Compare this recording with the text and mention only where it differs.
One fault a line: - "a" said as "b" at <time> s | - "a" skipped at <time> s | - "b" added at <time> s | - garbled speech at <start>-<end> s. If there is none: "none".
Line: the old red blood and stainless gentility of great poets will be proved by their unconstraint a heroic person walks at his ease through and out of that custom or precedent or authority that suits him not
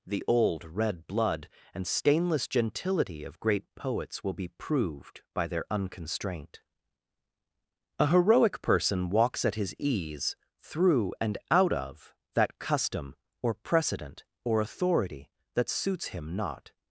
none